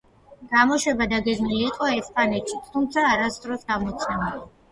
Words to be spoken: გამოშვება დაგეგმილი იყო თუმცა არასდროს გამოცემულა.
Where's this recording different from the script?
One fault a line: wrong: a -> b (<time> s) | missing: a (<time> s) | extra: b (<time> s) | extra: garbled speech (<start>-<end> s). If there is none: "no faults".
extra: ესპანეთშიც (2.0 s)